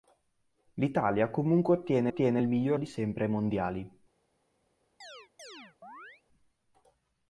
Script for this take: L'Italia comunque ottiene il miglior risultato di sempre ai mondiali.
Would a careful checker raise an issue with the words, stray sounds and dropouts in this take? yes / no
yes